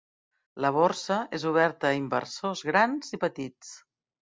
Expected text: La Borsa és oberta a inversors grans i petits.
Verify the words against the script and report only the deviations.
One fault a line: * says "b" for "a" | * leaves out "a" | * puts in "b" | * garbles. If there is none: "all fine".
all fine